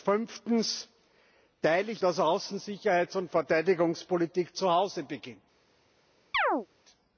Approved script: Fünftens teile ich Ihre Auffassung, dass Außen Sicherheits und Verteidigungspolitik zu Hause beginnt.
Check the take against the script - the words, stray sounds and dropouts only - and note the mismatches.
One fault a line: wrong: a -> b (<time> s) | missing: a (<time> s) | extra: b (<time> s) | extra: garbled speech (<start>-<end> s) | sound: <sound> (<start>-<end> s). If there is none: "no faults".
missing: Ihre Auffassung (2.0 s)
sound: chirp (6.3-6.7 s)